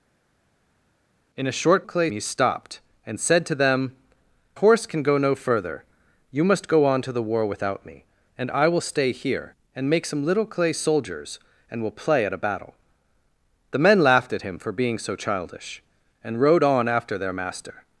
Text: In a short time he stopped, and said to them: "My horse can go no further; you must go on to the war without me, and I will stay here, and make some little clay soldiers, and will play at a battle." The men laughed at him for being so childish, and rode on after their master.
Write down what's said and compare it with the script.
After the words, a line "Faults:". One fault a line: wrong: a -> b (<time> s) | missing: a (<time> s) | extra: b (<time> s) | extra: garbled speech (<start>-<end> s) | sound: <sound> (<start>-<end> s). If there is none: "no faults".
In a short clay he stopped, and said to them: "Horse can go no further; you must go on to the war without me, and I will stay here, and make some little clay soldiers, and will play at a battle." The men laughed at him for being so childish, and rode on after their master.
Faults:
wrong: time -> clay (1.8 s)
missing: My (4.0 s)